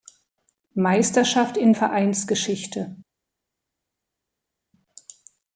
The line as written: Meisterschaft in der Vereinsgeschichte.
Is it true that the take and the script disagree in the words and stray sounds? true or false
true